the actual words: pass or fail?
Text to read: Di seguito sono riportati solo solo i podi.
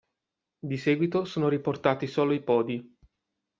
fail